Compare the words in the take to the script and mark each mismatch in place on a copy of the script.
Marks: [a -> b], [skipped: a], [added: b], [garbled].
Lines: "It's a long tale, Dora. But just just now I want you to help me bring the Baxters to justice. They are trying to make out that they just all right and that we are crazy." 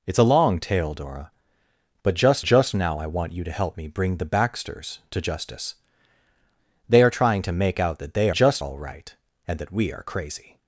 "It's a long tale, Dora. But just just now I want you to help me bring the Baxters to justice. They are trying to make out that they just all right and that we are crazy."